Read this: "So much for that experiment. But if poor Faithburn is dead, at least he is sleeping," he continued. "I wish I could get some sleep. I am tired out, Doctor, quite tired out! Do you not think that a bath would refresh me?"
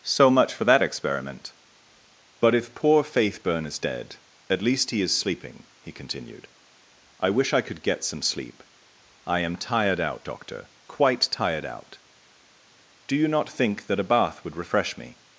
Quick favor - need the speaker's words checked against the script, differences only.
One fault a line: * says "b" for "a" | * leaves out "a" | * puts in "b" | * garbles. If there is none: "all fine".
all fine